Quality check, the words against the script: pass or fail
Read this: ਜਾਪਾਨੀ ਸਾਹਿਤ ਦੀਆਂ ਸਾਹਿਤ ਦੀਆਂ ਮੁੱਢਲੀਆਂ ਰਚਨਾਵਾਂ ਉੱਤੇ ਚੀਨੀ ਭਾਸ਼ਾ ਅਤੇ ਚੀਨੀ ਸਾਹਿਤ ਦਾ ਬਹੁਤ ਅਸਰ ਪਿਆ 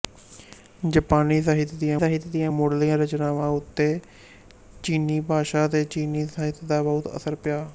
pass